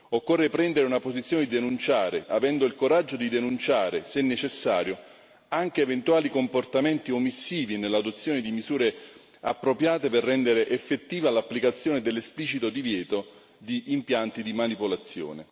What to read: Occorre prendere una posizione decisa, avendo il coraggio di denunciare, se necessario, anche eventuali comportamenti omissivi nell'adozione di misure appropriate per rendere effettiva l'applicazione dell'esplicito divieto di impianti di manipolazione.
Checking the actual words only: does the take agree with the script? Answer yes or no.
no